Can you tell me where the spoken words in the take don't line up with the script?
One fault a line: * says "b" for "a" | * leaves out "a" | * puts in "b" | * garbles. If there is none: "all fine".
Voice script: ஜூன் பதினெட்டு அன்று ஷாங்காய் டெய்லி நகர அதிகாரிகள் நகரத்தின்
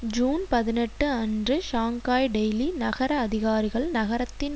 all fine